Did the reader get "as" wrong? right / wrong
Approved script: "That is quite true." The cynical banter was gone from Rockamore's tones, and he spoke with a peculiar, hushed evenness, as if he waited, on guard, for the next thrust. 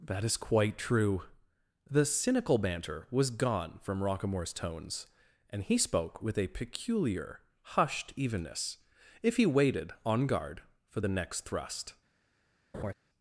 wrong